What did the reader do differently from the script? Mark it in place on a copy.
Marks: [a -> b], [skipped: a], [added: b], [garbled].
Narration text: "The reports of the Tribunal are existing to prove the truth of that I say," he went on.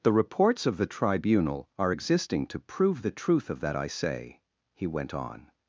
"The reports of the Tribunal are existing to prove the truth of that I say," he went on.